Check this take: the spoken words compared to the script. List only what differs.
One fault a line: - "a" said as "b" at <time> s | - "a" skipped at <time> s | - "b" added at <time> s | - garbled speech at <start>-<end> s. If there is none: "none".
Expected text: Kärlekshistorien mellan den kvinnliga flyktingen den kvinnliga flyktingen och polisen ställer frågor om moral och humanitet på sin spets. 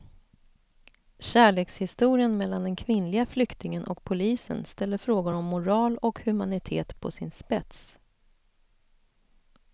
- "den kvinnliga flyktingen" skipped at 3.8 s